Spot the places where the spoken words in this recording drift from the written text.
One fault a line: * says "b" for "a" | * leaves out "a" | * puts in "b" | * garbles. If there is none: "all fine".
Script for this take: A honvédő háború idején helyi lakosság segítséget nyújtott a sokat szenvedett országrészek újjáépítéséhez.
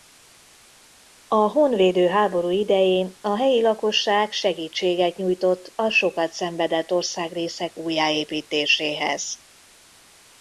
* puts in "a"